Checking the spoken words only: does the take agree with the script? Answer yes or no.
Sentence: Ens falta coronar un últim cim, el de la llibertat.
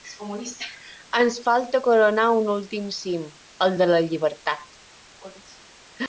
yes